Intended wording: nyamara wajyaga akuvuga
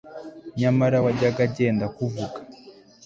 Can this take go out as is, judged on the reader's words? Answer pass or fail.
fail